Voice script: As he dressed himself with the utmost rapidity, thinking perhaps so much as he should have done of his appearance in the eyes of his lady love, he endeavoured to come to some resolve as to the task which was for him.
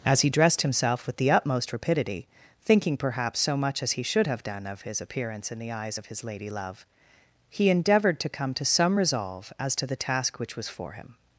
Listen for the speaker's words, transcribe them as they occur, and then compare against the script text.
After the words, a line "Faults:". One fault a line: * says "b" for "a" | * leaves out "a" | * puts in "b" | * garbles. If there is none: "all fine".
As he dressed himself with the utmost rapidity, thinking perhaps so much as he should have done of his appearance in the eyes of his lady love, he endeavoured to come to some resolve as to the task which was for him.
Faults:
all fine